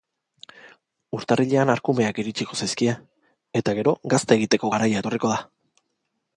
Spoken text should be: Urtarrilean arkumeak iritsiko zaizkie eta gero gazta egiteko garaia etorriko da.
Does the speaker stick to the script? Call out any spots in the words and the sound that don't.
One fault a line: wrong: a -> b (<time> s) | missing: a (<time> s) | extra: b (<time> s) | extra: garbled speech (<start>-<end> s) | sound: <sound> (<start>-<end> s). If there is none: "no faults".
no faults